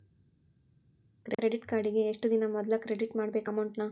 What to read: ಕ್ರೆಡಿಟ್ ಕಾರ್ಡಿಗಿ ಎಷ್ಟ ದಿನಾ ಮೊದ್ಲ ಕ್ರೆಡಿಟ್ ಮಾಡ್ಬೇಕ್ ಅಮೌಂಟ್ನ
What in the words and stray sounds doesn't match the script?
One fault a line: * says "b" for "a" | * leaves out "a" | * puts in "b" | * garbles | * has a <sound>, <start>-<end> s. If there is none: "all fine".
all fine